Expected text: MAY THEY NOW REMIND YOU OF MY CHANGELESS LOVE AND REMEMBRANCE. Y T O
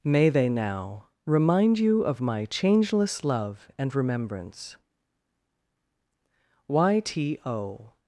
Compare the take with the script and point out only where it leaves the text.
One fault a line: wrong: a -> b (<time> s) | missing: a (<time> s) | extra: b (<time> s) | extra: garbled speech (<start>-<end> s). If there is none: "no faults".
no faults